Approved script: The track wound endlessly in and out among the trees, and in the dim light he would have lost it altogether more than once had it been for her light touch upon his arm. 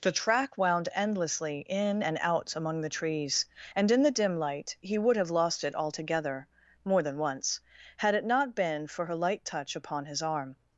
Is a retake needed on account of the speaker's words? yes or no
yes